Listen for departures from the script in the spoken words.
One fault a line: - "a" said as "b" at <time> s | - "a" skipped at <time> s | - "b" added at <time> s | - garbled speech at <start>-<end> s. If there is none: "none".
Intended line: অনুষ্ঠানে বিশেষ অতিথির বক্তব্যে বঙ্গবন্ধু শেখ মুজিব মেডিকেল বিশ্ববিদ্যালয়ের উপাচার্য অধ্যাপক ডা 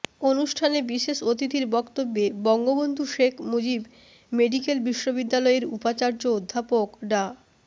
none